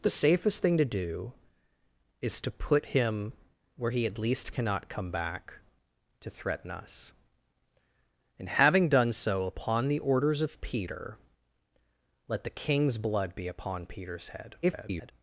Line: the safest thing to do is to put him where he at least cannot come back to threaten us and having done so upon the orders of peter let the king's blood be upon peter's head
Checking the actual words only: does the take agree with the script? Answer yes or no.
no